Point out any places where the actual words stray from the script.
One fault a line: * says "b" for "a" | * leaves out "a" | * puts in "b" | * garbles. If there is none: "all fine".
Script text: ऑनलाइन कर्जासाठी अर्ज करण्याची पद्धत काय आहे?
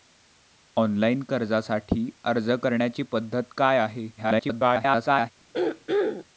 * garbles